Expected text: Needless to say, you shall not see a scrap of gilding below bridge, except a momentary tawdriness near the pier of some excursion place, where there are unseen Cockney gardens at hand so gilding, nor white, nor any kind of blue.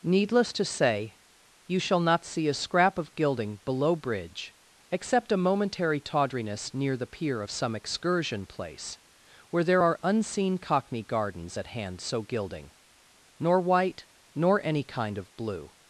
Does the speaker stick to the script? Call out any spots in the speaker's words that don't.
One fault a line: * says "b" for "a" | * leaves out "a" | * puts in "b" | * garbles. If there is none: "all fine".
all fine